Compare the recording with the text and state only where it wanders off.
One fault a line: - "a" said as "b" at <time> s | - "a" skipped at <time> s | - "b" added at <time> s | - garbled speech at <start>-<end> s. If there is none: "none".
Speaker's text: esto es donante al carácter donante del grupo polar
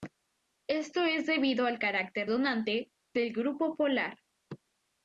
- "donante" said as "debido" at 1.3 s